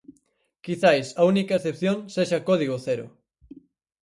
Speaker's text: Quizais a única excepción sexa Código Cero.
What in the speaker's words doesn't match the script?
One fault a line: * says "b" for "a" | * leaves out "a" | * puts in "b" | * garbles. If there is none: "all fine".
all fine